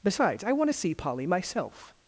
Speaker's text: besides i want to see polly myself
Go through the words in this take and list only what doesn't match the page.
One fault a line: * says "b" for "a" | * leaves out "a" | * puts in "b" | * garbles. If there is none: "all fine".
all fine